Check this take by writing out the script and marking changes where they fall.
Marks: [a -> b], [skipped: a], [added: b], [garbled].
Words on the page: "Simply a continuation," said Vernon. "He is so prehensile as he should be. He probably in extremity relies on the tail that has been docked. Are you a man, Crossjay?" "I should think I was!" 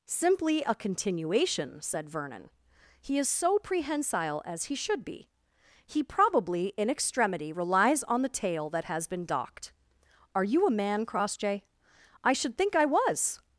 "Simply a continuation," said Vernon. "He is so prehensile as he should be. He probably in extremity relies on the tail that has been docked. Are you a man, Crossjay?" "I should think I was!"